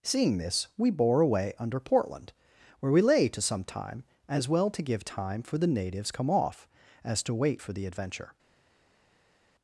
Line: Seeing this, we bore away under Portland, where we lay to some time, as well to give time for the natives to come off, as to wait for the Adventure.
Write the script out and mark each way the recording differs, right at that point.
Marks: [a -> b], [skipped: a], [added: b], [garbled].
Seeing this, we bore away under Portland, where we lay to some time, as well to give time for the natives [skipped: to] come off, as to wait for the Adventure.